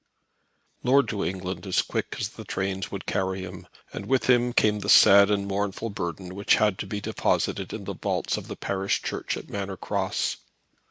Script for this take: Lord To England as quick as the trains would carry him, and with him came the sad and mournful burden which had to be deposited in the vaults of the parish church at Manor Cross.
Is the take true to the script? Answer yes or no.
yes